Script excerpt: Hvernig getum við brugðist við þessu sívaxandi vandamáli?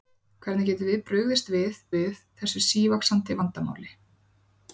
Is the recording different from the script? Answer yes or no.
yes